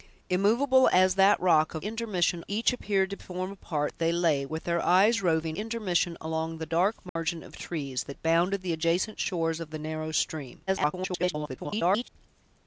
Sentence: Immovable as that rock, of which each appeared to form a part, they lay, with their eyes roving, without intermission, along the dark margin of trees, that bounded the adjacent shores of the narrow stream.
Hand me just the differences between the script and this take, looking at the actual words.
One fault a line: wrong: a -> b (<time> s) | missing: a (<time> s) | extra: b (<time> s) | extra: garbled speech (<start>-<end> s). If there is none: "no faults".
wrong: which -> intermission (1.8 s)
missing: without (5.6 s)
extra: garbled speech (10.7-12.1 s)